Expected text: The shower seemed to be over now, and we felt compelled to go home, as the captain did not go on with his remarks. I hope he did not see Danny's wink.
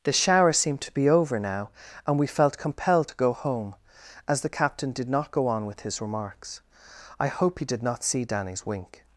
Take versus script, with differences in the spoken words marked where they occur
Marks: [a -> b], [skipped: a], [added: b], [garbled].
The shower seemed to be over now, and we felt compelled to go home, as the captain did not go on with his remarks. I hope he did not see Danny's wink.